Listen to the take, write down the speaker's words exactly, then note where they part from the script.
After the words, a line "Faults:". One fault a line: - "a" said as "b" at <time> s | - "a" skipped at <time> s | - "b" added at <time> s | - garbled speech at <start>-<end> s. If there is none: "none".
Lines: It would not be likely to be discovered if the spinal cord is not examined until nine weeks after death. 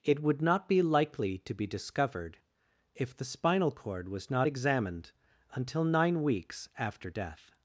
It would not be likely to be discovered if the spinal cord was not examined until nine weeks after death.
Faults:
- "is" said as "was" at 4.1 s